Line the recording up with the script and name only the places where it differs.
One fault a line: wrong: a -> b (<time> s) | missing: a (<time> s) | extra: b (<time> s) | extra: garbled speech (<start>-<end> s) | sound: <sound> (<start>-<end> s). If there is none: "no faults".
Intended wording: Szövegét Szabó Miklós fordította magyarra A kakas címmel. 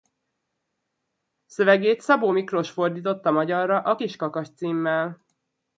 extra: kis (3.9 s)